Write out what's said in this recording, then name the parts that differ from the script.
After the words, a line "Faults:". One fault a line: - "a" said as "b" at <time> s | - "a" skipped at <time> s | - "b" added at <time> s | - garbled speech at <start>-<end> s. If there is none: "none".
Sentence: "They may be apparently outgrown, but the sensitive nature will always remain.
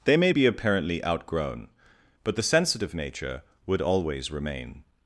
"They may be apparently outgrown, but the sensitive nature would always remain.
Faults:
- "will" said as "would" at 3.6 s